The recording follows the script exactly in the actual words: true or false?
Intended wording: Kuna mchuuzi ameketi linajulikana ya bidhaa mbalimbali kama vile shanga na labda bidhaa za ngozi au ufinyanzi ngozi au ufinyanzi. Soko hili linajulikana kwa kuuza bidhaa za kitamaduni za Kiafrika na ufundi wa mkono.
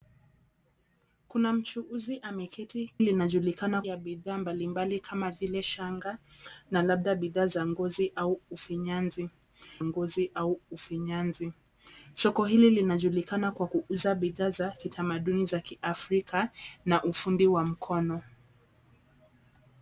true